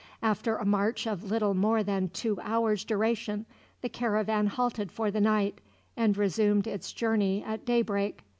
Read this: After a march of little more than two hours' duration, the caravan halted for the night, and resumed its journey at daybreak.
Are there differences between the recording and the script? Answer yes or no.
no